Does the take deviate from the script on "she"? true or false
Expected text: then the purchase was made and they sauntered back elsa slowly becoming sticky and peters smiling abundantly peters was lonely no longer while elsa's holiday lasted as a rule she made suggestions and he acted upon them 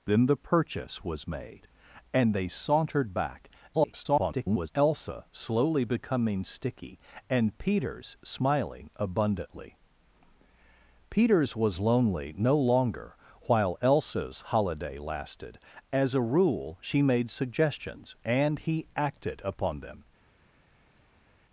false